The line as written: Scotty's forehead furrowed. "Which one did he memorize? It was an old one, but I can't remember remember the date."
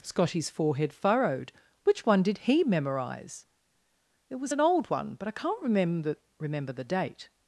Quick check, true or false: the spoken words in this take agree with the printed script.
true